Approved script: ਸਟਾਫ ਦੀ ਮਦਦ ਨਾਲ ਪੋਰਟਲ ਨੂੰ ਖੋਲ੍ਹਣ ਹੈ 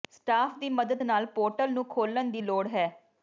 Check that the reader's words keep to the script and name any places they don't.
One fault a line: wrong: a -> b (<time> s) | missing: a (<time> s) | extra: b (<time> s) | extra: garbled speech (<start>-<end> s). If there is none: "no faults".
extra: ਦੀ ਲੋੜ (2.3 s)